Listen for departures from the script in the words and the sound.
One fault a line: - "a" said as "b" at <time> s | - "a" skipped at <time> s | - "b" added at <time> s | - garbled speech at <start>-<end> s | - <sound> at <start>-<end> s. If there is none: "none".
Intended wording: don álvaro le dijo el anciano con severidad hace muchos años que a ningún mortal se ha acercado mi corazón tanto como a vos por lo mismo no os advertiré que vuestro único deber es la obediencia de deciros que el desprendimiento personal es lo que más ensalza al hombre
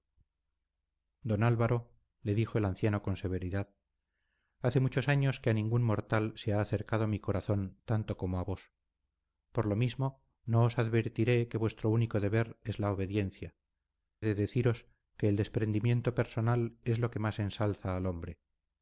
none